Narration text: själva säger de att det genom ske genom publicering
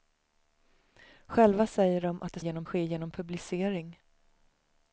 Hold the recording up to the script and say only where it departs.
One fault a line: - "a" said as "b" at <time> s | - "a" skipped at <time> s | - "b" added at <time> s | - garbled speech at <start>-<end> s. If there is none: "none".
none